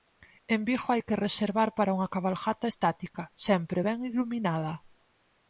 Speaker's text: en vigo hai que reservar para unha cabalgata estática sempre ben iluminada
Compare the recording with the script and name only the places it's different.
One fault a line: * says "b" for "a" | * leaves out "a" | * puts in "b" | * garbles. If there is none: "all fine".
all fine